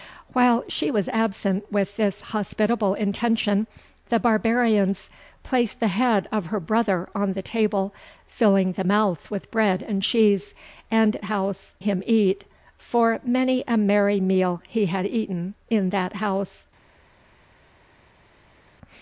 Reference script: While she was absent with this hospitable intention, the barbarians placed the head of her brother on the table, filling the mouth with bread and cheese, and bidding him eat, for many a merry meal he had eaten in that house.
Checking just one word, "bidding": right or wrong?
wrong